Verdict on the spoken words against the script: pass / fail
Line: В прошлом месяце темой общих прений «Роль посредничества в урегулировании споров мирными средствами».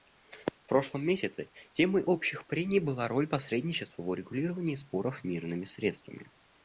fail